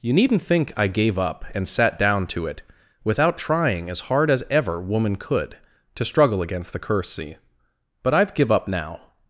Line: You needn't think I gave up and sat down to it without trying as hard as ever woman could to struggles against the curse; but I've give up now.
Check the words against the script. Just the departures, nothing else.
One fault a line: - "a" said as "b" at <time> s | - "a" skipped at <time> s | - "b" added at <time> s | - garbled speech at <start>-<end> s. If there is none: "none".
- "struggles" said as "struggle" at 6.0 s